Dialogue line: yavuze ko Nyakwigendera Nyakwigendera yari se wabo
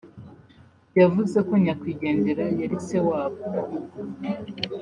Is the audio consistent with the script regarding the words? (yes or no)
no